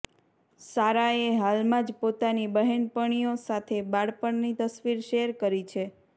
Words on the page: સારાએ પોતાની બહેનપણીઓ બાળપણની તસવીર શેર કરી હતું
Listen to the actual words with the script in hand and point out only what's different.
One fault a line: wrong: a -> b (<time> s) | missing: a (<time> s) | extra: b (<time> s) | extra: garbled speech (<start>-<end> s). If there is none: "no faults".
extra: હાલમાં જ (1.4 s)
extra: સાથે (3.4 s)
wrong: હતું -> છે (5.7 s)